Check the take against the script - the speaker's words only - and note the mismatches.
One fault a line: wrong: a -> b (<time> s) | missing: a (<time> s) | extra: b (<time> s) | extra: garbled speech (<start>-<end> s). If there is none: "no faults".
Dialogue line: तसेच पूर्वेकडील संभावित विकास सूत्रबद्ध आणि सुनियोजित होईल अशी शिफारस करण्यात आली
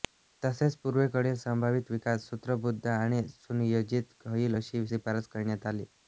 no faults